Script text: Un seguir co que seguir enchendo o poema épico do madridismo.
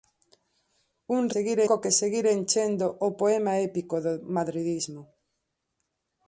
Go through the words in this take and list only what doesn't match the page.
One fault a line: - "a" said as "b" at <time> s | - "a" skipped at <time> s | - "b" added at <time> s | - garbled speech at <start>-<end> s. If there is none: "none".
none